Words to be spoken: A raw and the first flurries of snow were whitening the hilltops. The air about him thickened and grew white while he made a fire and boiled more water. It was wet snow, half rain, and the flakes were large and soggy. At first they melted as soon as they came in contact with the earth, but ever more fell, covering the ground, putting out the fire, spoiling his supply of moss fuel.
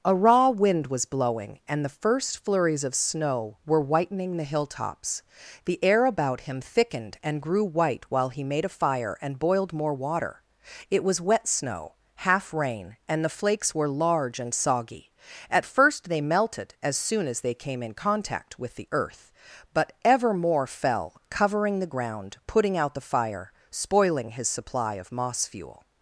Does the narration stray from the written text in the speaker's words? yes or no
yes